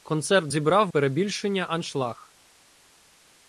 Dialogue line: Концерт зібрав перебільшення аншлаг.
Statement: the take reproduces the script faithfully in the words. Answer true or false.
true